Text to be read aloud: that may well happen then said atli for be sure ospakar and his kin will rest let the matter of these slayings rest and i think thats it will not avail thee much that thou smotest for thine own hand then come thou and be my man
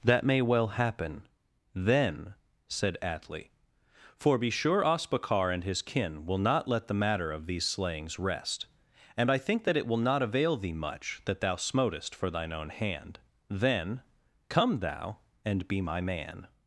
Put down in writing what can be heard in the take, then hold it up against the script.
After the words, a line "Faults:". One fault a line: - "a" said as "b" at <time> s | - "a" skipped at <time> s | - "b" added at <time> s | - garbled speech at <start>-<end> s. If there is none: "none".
that may well happen then said atli for be sure ospakar and his kin will not let the matter of these slayings rest and i think that it will not avail thee much that thou smotest for thine own hand then come thou and be my man
Faults:
- "rest" said as "not" at 6.4 s
- "thats" said as "that" at 9.6 s